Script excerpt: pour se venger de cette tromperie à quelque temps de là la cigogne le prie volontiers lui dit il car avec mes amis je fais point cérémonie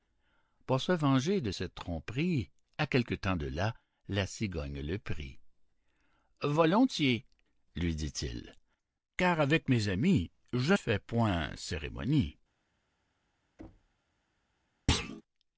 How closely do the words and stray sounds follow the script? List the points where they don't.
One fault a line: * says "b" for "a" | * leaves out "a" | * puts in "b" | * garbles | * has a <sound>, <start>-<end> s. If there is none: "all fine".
* has a thud, 13.6-14.0 s
* has a thud, 14.9-15.2 s